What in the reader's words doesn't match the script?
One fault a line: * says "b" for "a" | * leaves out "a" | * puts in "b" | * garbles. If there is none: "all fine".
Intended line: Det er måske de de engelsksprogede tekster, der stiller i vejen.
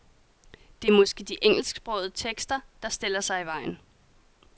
* leaves out "de"
* puts in "sig"